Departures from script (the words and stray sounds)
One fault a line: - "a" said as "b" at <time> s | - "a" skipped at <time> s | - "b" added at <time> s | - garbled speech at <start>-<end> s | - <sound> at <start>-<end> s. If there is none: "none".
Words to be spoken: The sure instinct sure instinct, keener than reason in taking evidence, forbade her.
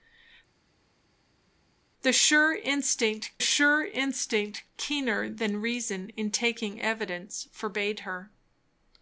none